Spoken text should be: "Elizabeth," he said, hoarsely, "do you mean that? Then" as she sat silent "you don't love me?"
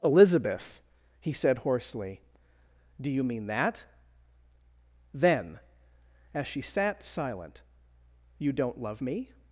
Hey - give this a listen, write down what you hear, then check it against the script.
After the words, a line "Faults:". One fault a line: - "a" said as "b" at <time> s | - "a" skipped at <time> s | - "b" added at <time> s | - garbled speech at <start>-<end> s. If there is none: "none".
"Elizabeth," he said, hoarsely, "do you mean that? Then" as she sat silent "you don't love me?"
Faults:
none